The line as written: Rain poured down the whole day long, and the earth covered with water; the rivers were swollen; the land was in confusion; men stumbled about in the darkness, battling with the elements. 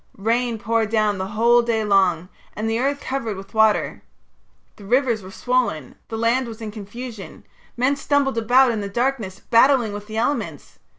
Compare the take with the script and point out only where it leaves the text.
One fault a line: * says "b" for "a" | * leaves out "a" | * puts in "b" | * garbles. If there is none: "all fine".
all fine